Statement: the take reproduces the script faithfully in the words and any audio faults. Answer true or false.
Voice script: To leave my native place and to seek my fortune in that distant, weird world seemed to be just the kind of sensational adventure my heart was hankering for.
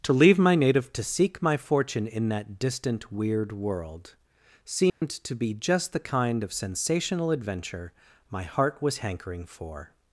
false